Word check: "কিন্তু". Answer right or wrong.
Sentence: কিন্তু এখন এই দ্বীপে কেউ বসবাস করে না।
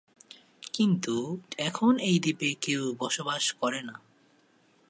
right